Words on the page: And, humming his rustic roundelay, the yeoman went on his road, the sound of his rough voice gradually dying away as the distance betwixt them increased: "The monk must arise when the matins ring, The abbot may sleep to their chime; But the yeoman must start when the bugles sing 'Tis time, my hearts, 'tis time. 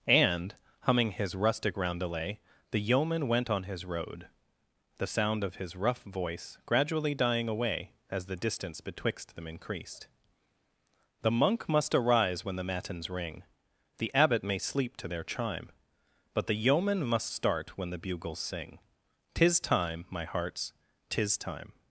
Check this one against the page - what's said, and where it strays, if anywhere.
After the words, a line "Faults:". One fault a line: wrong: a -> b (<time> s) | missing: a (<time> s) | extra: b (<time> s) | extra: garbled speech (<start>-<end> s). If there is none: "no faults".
And, humming his rustic roundelay, the yeoman went on his road, the sound of his rough voice gradually dying away as the distance betwixt them increased: "The monk must arise when the matins ring, The abbot may sleep to their chime; But the yeoman must start when the bugles sing 'Tis time, my hearts, 'tis time.
Faults:
no faults